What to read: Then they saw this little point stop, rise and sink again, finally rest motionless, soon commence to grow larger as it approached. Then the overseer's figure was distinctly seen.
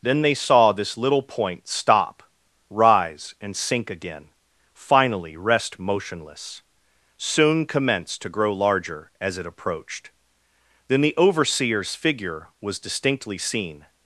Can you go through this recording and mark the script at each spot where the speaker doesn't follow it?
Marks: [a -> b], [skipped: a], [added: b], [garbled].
Then they saw this little point stop, rise and sink again, finally rest motionless, soon commence to grow larger as it approached. Then the overseer's figure was distinctly seen.